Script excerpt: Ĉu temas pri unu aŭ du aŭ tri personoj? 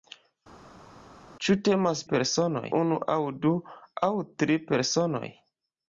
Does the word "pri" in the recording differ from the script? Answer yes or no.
yes